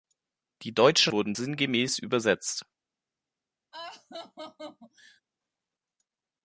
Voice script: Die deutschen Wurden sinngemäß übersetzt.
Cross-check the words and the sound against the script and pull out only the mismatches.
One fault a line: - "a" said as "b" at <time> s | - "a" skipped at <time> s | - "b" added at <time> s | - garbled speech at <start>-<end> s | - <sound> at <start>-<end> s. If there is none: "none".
- laugh at 3.7-5.2 s